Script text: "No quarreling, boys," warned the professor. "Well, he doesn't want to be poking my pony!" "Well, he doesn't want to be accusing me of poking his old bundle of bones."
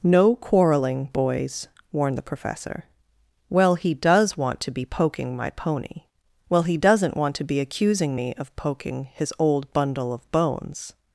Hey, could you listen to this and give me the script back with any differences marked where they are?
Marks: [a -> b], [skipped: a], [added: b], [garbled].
"No quarreling, boys," warned the professor. "Well, he [doesn't -> does] want to be poking my pony!" "Well, he doesn't want to be accusing me of poking his old bundle of bones."